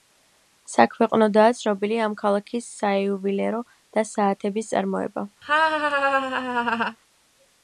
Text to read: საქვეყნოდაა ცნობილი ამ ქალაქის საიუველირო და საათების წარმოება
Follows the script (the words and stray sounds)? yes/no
no